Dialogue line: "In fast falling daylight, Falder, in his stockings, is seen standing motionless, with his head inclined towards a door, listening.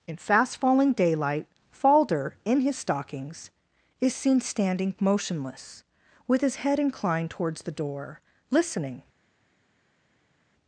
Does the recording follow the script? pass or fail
fail